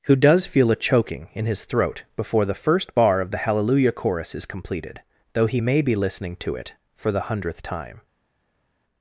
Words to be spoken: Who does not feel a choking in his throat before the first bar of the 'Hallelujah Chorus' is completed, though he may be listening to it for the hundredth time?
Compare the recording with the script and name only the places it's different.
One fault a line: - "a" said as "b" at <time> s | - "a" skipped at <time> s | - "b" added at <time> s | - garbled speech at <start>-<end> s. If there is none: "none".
- "not" skipped at 0.5 s